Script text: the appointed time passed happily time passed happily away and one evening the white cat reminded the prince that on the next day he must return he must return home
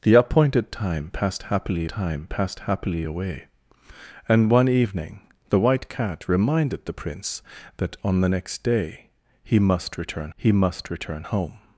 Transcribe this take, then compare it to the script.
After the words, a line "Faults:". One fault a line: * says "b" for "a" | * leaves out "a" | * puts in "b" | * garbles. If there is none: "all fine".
the appointed time passed happily time passed happily away and one evening the white cat reminded the prince that on the next day he must return he must return home
Faults:
all fine